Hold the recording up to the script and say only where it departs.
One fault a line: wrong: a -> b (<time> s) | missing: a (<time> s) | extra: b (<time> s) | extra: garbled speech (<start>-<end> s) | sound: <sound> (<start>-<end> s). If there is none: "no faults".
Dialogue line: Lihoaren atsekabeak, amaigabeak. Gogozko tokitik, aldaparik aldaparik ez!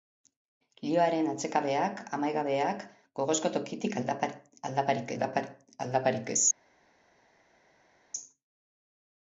no faults